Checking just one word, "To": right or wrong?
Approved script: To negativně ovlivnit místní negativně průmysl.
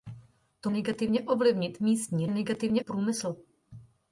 right